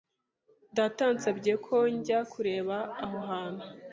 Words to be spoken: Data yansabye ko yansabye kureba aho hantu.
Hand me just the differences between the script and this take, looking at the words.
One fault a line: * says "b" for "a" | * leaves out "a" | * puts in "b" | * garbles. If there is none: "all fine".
* says "njya" for "yansabye"